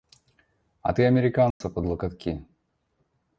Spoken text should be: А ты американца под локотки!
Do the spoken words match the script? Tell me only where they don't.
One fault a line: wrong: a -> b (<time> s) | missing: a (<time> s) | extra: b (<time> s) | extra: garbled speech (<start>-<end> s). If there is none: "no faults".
no faults